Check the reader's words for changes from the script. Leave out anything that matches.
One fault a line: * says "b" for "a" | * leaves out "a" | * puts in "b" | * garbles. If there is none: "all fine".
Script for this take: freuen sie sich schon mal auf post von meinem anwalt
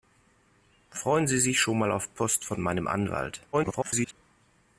* garbles